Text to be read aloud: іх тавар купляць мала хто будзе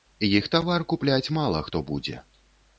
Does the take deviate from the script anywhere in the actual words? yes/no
no